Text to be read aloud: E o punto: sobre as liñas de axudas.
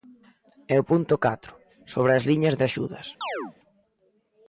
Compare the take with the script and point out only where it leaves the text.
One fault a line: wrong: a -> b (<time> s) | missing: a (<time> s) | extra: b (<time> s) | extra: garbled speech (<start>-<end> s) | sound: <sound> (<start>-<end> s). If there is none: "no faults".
extra: catro (1.2 s)
sound: chirp (3.2-3.5 s)